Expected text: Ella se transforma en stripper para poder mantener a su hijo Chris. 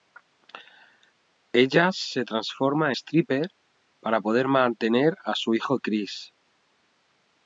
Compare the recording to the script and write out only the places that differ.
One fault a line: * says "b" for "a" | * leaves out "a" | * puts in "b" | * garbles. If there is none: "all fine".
* leaves out "en"